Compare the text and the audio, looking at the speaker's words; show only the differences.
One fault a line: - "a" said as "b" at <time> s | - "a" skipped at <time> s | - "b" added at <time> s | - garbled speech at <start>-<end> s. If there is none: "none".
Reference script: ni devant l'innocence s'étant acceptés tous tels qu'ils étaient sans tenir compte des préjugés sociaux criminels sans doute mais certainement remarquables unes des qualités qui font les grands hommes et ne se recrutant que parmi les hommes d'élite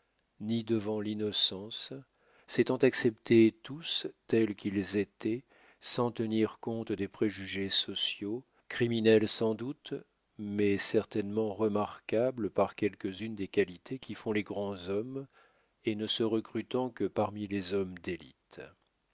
- "par quelques" added at 12.5 s